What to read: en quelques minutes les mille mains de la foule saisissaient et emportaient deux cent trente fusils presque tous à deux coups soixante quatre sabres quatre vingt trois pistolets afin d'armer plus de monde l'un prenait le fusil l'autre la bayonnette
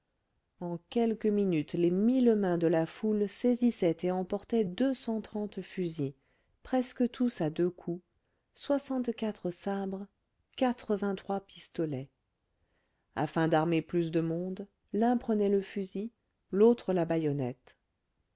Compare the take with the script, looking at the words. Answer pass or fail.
pass